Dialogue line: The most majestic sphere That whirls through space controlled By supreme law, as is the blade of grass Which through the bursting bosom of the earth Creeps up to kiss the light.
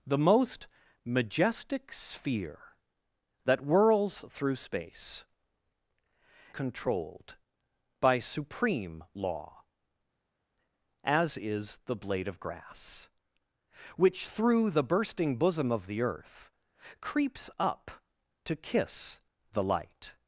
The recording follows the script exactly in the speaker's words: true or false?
true